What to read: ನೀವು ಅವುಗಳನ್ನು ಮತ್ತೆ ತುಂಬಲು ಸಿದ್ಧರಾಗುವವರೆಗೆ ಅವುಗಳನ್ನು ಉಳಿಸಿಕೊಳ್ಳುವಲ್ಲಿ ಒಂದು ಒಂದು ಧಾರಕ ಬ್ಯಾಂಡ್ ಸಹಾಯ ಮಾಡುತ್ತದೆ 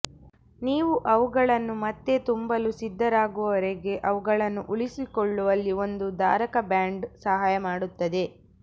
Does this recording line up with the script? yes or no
no